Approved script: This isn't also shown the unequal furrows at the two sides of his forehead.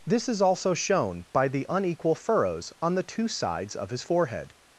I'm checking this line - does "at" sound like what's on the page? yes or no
no